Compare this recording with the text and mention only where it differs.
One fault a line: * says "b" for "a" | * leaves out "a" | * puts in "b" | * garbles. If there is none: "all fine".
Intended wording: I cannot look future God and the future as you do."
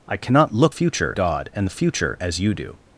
all fine